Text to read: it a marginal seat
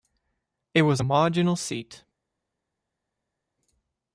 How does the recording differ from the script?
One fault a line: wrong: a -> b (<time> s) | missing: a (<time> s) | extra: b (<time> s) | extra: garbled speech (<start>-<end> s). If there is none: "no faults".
extra: was (0.8 s)